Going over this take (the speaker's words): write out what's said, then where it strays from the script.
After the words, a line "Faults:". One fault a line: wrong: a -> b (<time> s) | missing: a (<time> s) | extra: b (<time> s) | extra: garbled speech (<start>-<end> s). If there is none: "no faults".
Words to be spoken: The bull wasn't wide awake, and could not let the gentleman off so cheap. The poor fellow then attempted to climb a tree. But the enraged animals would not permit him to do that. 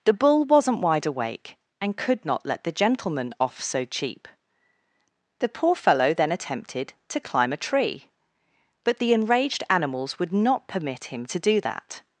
The bull wasn't wide awake, and could not let the gentleman off so cheap. The poor fellow then attempted to climb a tree. But the enraged animals would not permit him to do that.
Faults:
no faults